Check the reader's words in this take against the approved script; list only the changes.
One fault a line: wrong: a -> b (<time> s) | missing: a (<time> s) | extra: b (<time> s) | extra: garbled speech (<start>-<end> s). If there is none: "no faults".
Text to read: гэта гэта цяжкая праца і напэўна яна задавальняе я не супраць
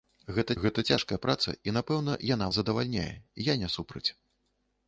no faults